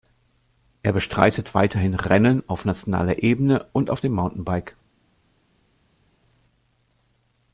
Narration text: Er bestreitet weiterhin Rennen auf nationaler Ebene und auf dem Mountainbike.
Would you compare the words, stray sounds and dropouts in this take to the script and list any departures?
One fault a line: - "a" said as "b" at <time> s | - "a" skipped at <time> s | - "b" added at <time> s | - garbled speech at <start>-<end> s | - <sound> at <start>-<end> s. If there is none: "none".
none